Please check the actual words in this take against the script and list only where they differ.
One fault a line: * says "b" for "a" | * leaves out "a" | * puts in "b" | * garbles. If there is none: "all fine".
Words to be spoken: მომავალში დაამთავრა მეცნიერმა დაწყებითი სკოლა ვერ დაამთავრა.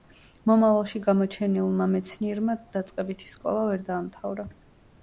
* says "გამოჩენილმა" for "დაამთავრა"